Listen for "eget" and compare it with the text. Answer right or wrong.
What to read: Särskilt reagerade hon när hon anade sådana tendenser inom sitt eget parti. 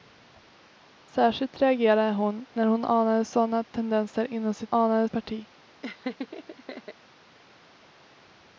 wrong